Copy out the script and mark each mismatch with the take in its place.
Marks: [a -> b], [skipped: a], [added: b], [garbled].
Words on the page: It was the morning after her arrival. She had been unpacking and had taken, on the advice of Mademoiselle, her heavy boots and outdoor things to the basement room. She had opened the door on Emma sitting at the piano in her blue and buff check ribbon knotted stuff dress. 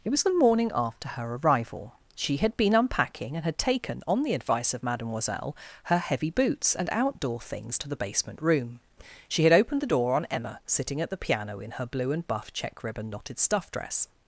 It was the morning after her arrival. She had been unpacking and had taken, on the advice of Mademoiselle, her heavy boots and outdoor things to the basement room. She had opened the door on Emma sitting at the piano in her blue and buff check ribbon knotted stuff dress.